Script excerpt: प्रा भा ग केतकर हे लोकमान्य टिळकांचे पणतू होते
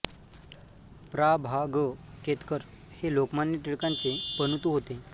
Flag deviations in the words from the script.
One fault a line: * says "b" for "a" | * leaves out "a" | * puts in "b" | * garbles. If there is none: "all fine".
all fine